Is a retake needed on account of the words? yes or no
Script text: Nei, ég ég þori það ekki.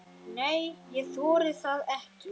yes